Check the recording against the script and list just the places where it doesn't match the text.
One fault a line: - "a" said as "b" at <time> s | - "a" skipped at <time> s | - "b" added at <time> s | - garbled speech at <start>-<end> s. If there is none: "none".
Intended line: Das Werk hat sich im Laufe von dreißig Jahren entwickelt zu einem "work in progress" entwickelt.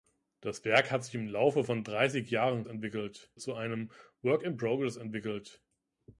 none